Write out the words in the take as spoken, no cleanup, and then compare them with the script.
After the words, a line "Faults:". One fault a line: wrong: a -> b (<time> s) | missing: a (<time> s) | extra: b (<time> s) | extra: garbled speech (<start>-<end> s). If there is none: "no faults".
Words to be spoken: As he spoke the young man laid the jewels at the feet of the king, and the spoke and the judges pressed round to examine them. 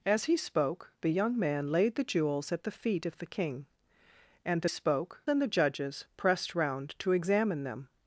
As he spoke the young man laid the jewels at the feet of the king, and the spoke and the judges pressed round to examine them.
Faults:
no faults